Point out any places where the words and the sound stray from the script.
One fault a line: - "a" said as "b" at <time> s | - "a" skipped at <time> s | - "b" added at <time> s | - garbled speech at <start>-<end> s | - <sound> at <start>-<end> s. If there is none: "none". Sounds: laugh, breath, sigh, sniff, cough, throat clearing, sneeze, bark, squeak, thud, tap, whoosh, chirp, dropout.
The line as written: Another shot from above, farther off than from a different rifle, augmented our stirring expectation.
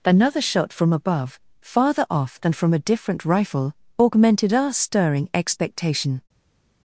none